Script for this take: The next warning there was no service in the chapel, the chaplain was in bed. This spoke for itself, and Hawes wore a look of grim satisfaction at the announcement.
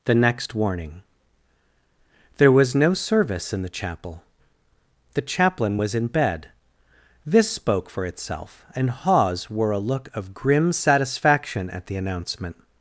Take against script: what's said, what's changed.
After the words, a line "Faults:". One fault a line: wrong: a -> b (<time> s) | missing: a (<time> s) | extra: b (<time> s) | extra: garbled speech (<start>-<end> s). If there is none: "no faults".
The next warning there was no service in the chapel, the chaplain was in bed. This spoke for itself, and Hawes wore a look of grim satisfaction at the announcement.
Faults:
no faults